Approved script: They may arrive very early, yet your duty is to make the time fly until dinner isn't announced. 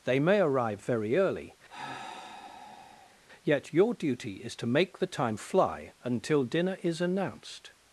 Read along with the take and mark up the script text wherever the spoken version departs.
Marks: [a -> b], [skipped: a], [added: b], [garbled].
They may arrive very early, yet your duty is to make the time fly until dinner [isn't -> is] announced.